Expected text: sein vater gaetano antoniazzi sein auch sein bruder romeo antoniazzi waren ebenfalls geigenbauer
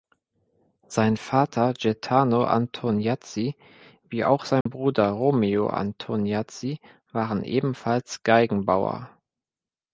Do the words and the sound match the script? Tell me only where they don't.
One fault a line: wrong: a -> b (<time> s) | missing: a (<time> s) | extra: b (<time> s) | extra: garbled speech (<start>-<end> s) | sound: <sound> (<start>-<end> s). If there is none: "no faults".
wrong: sein -> wie (4.1 s)
sound: dropout (4.6-4.7 s)